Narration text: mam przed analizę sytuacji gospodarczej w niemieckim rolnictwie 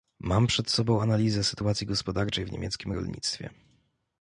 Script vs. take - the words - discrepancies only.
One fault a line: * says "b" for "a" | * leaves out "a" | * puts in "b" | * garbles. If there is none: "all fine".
* puts in "sobą"